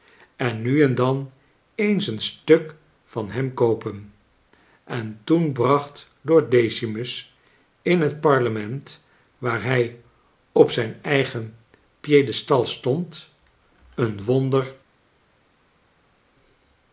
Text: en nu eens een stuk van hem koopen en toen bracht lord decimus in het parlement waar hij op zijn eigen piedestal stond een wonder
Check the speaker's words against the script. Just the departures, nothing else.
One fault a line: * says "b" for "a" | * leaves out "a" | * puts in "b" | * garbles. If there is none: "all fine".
* puts in "en dan"